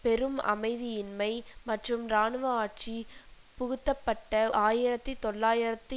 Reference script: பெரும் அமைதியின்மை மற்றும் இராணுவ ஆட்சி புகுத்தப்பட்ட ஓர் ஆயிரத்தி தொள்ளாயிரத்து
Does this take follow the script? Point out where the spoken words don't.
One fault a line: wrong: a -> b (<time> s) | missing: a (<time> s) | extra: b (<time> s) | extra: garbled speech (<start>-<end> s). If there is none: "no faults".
missing: ஓர் (4.3 s)